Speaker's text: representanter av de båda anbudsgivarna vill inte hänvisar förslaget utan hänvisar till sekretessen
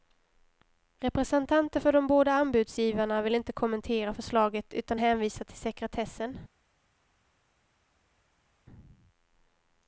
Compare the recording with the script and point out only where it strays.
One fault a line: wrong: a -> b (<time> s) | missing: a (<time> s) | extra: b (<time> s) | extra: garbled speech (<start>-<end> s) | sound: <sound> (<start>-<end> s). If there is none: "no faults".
wrong: av -> för (1.8 s)
wrong: hänvisar -> kommentera (3.5 s)